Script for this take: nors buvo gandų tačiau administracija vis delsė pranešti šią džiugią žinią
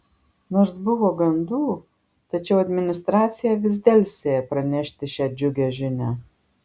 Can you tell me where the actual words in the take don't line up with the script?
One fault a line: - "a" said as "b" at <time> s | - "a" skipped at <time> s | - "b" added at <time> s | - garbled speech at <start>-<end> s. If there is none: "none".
none